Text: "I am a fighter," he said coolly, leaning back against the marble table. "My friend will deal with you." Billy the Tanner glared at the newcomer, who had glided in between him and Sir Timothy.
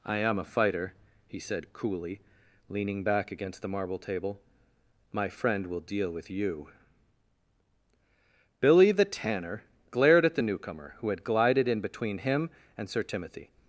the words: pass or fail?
pass